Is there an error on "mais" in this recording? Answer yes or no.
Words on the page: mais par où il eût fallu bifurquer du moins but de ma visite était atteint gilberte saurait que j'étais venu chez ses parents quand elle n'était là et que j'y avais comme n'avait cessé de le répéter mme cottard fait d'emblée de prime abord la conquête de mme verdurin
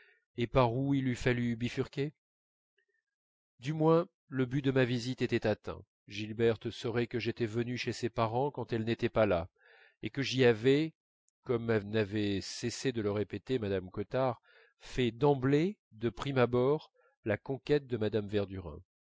yes